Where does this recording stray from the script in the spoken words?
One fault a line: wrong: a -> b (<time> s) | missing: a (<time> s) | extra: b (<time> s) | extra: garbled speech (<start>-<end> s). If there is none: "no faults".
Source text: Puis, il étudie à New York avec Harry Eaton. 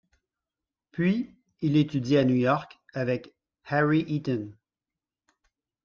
no faults